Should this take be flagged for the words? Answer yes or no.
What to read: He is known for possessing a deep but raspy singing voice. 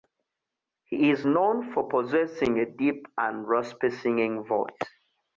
yes